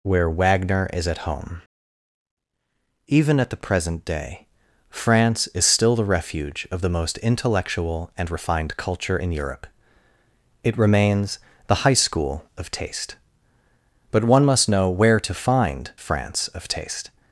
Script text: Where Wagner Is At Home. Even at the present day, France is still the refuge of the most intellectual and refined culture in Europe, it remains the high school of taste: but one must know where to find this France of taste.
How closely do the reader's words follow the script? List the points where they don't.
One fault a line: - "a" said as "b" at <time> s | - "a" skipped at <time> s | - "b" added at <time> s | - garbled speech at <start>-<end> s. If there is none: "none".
- "this" skipped at 15.9 s